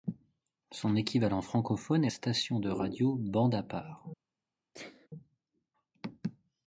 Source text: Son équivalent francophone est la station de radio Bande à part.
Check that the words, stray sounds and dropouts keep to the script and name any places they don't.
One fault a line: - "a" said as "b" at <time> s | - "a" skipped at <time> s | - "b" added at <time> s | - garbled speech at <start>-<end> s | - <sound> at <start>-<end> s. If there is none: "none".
- "la" skipped at 2.1 s
- sneeze at 4.7-5.1 s